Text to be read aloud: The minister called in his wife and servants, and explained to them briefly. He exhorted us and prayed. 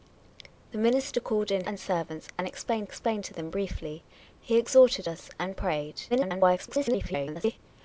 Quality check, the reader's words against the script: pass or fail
fail